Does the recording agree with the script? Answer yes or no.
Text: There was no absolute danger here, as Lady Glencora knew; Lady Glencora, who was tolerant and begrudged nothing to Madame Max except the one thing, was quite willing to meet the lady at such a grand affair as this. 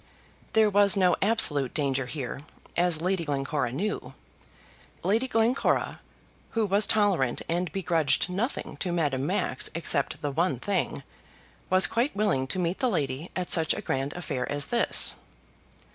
yes